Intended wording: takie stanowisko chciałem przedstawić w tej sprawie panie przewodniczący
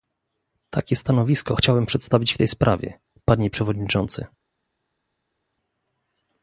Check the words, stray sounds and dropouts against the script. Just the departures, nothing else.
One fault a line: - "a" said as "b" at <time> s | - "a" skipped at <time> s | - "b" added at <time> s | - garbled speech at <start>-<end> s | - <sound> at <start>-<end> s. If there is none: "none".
none